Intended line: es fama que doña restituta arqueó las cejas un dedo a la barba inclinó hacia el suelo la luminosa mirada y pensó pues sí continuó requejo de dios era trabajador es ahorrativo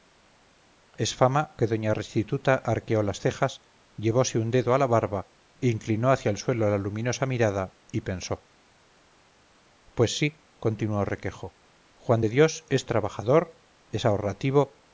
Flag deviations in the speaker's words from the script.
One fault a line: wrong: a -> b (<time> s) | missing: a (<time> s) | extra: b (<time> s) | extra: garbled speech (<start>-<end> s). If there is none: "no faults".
extra: llevose (4.0 s)
extra: juan (12.0 s)
wrong: era -> es (12.7 s)